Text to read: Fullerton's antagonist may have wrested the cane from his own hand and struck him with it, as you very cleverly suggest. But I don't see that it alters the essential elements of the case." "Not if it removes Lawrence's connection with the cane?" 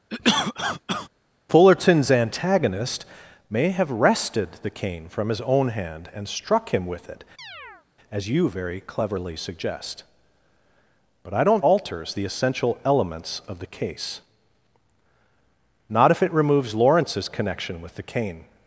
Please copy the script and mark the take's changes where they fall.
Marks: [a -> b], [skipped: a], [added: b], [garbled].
Fullerton's antagonist may have wrested the cane from his own hand and struck him with it, as you very cleverly suggest. But I don't [skipped: see that it] alters the essential elements of the case." "Not if it removes Lawrence's connection with the cane?"